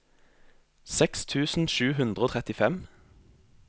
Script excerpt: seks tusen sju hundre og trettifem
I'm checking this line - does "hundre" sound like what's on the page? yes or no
yes